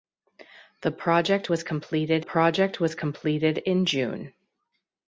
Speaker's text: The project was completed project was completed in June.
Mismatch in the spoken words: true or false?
false